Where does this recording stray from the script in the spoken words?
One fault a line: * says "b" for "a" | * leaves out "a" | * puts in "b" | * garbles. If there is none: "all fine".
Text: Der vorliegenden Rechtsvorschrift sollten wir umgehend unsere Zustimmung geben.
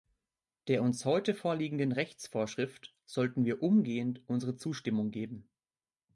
* puts in "uns heute"